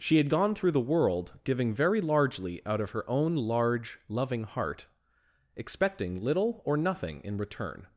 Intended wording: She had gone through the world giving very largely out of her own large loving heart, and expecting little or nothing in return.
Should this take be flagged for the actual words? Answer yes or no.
yes